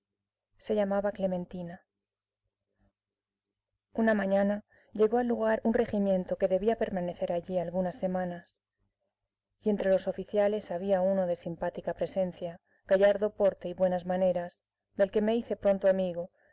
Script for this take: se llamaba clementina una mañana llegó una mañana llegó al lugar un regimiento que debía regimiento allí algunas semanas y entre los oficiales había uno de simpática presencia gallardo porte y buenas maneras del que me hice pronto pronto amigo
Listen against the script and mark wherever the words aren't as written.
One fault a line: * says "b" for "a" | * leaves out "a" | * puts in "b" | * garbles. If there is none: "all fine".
* leaves out "una mañana llegó"
* says "permanecer" for "regimiento"
* leaves out "pronto"